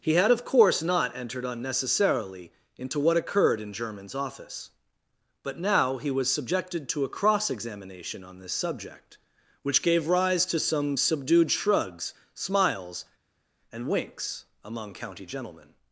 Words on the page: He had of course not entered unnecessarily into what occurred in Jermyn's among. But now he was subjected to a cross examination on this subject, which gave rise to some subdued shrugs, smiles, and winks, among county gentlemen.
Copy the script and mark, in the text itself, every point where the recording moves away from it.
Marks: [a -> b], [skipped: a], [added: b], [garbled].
He had of course not entered unnecessarily into what occurred in Jermyn's [among. -> office] But now he was subjected to a cross examination on this subject, which gave rise to some subdued shrugs, smiles, and winks, among county gentlemen.